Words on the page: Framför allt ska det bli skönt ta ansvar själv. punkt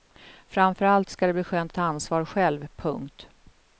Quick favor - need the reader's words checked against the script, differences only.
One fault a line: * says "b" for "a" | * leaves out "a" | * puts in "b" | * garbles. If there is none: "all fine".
all fine